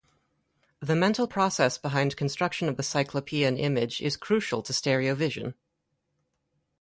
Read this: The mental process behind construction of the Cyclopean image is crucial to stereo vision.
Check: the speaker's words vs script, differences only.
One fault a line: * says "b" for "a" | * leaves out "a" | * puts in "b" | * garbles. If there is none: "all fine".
all fine